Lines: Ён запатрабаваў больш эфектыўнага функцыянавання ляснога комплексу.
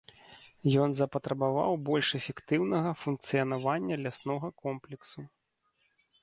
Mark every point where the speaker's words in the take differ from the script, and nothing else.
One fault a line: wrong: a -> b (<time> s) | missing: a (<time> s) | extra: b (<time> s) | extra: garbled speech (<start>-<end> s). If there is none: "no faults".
no faults